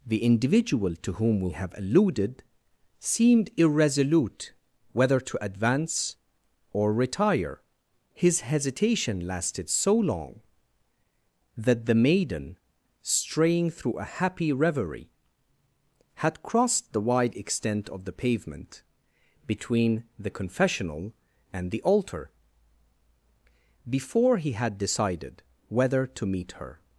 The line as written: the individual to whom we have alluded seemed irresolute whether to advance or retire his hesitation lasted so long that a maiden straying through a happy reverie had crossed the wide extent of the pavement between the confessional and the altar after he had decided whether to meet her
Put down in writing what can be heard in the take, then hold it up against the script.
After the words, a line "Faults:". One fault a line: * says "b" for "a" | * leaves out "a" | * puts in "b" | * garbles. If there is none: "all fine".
the individual to whom we have alluded seemed irresolute whether to advance or retire his hesitation lasted so long that the maiden straying through a happy reverie had crossed the wide extent of the pavement between the confessional and the altar before he had decided whether to meet her
Faults:
* says "the" for "a"
* says "before" for "after"